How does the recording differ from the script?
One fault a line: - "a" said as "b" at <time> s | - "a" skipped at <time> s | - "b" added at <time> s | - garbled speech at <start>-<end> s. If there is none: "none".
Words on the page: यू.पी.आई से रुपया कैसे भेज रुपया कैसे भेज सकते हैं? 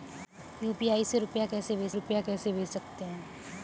none